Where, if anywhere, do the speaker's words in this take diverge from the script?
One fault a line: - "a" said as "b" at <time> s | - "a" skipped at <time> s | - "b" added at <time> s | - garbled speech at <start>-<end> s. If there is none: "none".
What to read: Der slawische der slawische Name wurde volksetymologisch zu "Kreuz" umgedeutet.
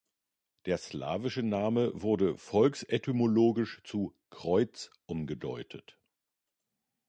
- "der slawische" skipped at 1.4 s